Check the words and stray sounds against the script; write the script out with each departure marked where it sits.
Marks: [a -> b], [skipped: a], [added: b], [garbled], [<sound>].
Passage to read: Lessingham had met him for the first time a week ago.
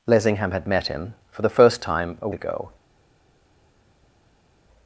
Lessingham had met him for the first time a [skipped: week] ago.